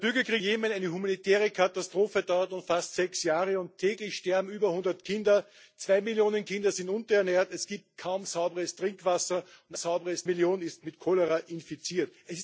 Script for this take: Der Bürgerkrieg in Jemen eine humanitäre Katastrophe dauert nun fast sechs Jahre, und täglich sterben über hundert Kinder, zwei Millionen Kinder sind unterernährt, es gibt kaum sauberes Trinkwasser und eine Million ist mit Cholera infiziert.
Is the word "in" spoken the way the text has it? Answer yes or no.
no